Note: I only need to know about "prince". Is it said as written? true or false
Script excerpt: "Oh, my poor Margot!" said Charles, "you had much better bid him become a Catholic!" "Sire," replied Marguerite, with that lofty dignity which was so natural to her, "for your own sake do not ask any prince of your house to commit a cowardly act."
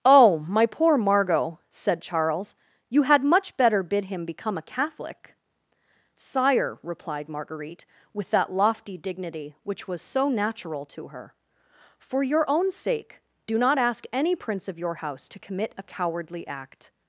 true